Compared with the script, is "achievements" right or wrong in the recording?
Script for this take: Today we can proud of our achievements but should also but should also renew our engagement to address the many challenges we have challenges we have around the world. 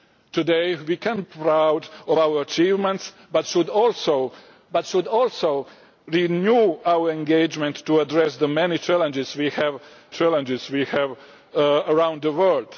right